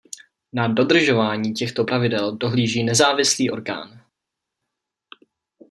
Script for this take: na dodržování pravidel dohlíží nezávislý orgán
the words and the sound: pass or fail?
fail